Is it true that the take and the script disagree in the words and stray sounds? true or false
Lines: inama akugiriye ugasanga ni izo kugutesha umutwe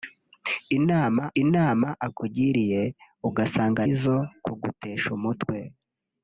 true